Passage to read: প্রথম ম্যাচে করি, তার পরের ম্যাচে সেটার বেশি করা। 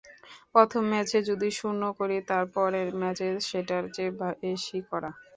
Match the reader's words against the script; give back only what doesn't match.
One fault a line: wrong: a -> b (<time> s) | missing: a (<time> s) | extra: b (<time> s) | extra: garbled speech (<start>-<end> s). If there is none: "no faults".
extra: যদি শূন্য (1.3 s)
extra: চেয়ে (3.9 s)